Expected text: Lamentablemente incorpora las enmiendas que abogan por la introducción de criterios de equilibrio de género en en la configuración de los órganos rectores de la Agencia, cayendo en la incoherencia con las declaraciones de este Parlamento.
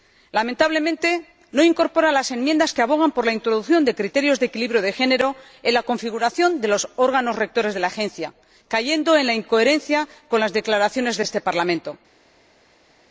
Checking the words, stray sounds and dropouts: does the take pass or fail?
fail